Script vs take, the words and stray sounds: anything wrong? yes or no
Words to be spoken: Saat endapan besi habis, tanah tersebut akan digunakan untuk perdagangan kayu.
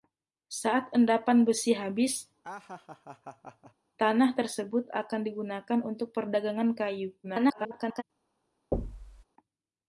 yes